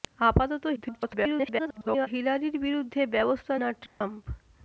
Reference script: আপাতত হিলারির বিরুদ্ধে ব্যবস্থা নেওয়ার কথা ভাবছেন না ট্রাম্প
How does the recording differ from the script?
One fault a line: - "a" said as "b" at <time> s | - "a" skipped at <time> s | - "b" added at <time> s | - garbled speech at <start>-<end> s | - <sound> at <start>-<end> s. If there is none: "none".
- garbled speech at 0.8-2.1 s
- "নেওয়ার কথা ভাবছেন" skipped at 3.5 s
- dropout at 3.9-4.0 s